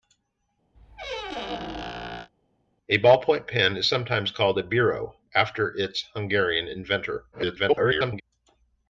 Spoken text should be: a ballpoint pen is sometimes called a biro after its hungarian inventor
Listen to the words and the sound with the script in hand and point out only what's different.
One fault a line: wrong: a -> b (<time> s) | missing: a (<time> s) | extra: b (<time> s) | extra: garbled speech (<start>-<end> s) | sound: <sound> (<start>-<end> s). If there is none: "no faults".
sound: squeak (0.7-2.3 s)
extra: garbled speech (7.3-8.2 s)